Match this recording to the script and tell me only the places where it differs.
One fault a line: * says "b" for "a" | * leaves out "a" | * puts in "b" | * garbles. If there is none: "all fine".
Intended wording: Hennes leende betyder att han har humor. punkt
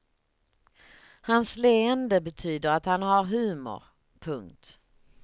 * says "Hans" for "Hennes"